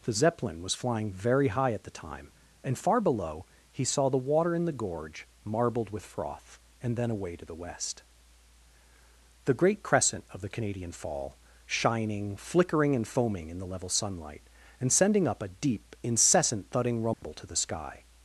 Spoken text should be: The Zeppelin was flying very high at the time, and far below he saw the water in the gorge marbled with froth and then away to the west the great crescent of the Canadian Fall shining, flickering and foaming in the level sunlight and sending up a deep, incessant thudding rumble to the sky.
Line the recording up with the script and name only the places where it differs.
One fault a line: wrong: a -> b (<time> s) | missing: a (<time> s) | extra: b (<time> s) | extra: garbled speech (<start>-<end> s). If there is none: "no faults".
no faults